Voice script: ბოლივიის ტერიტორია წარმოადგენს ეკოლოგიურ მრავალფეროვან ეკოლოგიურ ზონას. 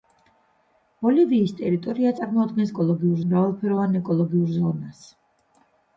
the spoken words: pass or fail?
pass